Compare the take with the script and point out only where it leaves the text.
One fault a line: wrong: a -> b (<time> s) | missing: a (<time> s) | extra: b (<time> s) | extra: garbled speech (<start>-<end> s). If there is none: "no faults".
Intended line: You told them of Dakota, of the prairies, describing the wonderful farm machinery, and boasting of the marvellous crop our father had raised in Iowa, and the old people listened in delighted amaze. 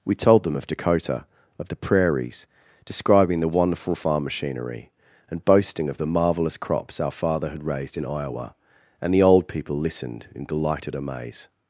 wrong: You -> We (0.0 s)
wrong: crop -> crops (6.6 s)